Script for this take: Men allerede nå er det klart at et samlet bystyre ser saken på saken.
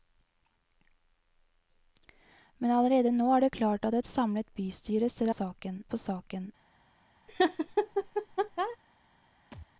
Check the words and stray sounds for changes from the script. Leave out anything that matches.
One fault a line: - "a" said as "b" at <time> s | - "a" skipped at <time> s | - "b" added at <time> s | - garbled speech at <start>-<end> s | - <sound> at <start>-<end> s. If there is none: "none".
- laugh at 7.3-8.8 s
- thud at 9.5-9.7 s